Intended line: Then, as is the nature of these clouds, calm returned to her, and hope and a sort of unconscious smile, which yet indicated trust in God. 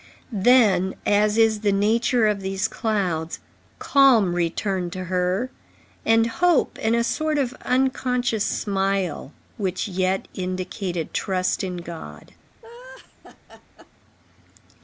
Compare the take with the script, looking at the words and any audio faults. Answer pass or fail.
fail